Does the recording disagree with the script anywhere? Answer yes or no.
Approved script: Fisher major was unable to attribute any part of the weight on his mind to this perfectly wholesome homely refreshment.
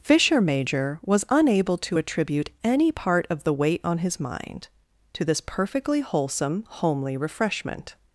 no